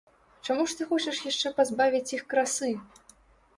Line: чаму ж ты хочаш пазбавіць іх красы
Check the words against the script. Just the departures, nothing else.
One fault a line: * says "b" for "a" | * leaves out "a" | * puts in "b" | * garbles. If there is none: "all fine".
* puts in "яшчэ"